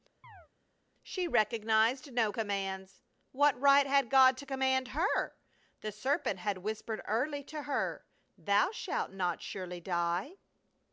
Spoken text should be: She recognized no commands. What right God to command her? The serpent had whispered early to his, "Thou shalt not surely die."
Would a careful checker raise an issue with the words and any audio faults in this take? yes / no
yes